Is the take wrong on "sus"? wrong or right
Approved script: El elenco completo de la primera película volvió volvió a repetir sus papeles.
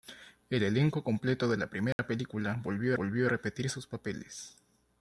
right